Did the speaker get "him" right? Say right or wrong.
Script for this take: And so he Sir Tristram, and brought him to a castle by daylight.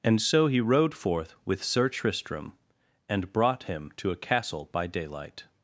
right